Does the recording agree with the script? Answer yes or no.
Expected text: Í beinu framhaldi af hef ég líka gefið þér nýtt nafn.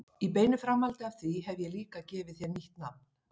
no